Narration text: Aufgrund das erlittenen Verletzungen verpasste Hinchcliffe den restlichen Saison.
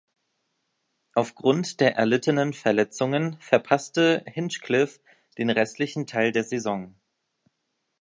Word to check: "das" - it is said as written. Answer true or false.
false